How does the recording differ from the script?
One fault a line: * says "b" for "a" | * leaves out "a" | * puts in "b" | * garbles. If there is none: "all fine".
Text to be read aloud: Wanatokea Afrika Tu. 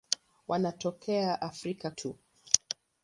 all fine